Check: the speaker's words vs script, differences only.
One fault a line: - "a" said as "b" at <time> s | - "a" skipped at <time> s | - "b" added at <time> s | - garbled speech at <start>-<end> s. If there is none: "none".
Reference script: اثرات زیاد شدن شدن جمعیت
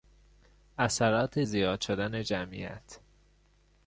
- "شدن" skipped at 2.2 s